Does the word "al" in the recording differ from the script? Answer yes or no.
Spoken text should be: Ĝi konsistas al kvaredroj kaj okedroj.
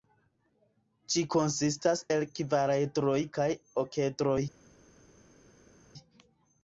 yes